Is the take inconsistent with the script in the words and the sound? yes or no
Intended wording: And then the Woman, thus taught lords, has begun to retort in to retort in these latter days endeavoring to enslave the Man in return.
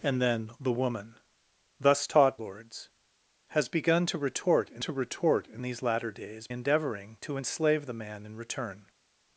no